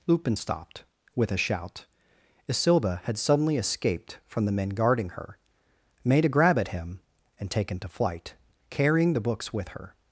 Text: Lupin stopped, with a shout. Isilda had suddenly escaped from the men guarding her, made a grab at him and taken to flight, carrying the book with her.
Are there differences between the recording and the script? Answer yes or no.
yes